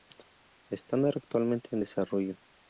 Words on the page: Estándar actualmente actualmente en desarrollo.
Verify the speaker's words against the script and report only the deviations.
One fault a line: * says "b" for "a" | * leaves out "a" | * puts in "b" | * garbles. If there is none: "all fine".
* leaves out "actualmente"